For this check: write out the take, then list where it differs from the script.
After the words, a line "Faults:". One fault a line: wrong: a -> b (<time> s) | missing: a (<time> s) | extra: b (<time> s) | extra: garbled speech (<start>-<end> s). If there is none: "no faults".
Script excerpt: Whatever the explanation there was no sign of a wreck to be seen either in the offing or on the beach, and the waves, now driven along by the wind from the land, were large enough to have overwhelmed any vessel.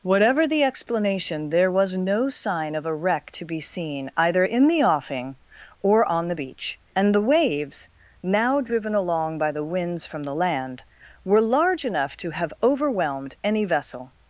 Whatever the explanation there was no sign of a wreck to be seen either in the offing or on the beach, and the waves, now driven along by the winds from the land, were large enough to have overwhelmed any vessel.
Faults:
wrong: wind -> winds (9.6 s)